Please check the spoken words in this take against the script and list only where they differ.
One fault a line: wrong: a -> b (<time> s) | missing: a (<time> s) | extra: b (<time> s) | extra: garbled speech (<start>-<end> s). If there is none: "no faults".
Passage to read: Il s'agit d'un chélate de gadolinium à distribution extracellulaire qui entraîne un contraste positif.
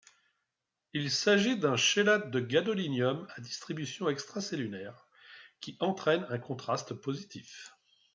no faults